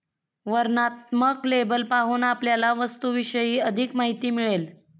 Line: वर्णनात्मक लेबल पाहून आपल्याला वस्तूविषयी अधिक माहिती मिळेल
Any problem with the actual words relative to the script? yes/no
no